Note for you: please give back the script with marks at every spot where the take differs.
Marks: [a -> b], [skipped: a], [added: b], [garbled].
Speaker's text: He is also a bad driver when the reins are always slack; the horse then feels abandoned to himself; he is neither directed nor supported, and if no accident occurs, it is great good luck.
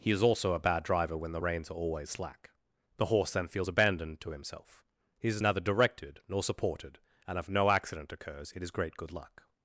He is also a bad driver when the reins are always slack; the horse then feels abandoned to himself; he is neither directed nor supported, and if no accident occurs, it is great good luck.